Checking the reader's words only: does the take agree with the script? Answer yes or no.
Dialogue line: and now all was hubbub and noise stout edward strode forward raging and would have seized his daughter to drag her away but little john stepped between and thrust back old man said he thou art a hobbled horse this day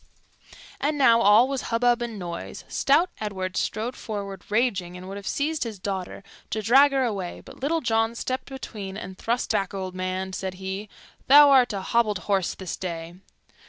yes